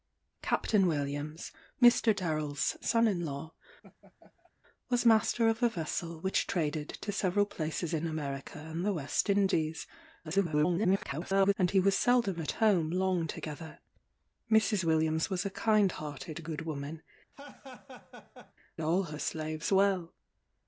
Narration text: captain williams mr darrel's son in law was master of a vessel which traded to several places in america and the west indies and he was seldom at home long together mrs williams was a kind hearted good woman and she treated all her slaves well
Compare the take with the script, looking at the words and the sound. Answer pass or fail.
fail